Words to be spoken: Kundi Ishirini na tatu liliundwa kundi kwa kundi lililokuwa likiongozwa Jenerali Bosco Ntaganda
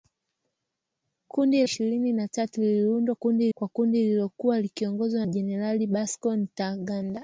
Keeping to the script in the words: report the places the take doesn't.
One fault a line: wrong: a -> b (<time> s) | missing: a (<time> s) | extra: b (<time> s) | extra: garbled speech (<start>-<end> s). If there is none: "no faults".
no faults